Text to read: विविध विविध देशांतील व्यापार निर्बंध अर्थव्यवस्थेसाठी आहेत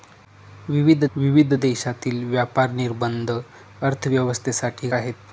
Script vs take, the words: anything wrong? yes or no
no